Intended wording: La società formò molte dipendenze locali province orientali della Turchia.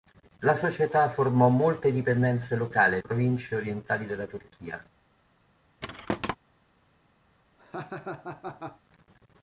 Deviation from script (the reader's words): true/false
false